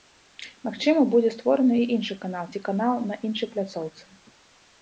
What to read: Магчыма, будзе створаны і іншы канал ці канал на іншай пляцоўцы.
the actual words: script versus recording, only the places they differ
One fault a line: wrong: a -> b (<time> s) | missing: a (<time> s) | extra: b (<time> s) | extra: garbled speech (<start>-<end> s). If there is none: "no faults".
no faults